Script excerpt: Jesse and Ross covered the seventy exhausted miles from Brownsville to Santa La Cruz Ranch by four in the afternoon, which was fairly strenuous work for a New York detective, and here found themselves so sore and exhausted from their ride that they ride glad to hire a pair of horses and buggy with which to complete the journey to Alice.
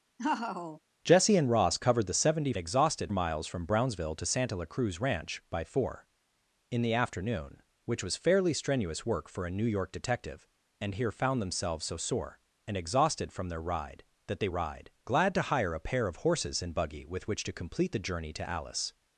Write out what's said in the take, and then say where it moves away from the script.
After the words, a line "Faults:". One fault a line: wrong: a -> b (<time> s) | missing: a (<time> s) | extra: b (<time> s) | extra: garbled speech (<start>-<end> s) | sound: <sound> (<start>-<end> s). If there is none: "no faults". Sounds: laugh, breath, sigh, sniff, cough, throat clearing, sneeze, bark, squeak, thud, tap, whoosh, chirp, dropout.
Jesse and Ross covered the seventy exhausted miles from Brownsville to Santa La Cruz Ranch by four in the afternoon, which was fairly strenuous work for a New York detective, and here found themselves so sore and exhausted from their ride that they ride glad to hire a pair of horses and buggy with which to complete the journey to Alice.
Faults:
sound: laugh (0.2-0.8 s)